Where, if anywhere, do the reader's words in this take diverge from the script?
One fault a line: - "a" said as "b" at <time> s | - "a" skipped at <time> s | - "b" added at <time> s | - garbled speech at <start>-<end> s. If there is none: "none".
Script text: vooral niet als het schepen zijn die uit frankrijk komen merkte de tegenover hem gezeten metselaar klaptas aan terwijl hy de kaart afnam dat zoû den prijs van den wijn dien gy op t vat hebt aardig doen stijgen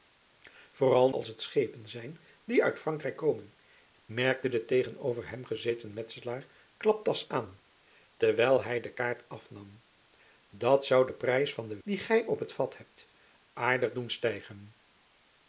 - "niet" skipped at 1.1 s
- "wijn" skipped at 11.8 s